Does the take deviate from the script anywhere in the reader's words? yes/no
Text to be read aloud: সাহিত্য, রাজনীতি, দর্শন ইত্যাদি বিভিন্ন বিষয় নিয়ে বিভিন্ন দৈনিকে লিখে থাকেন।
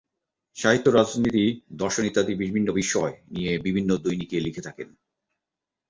no